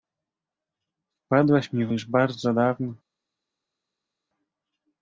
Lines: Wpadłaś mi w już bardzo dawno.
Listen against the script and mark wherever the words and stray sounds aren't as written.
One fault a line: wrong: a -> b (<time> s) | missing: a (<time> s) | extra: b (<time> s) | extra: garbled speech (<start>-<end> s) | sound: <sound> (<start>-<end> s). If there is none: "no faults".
no faults